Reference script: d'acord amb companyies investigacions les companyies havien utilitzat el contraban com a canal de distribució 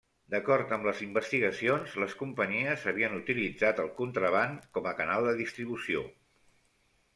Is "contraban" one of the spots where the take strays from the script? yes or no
no